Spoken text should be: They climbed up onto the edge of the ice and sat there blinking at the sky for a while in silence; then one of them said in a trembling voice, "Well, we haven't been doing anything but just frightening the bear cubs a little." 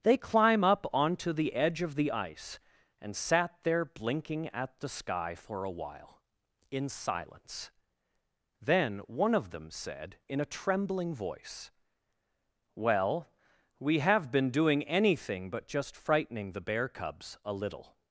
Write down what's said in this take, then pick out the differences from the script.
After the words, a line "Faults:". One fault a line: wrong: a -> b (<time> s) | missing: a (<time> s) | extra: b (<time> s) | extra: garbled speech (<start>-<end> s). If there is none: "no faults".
They climb up onto the edge of the ice and sat there blinking at the sky for a while in silence; then one of them said in a trembling voice, "Well, we have been doing anything but just frightening the bear cubs a little."
Faults:
wrong: climbed -> climb (0.2 s)
wrong: haven't -> have (14.0 s)